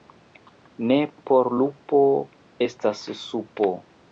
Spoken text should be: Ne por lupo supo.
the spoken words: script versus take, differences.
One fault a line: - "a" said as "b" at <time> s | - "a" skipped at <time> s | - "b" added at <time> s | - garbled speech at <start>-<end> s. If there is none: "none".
- "estas" added at 2.7 s